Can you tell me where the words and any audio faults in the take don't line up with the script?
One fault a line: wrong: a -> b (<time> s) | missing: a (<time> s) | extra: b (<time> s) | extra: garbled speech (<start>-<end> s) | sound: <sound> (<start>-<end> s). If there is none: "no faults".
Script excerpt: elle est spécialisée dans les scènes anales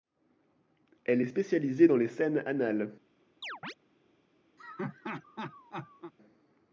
sound: chirp (3.4-3.7 s)
sound: laugh (4.6-6.1 s)